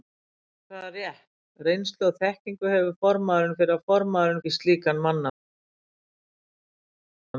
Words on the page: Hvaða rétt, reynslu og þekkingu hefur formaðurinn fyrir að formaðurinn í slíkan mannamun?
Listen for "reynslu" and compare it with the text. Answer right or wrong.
right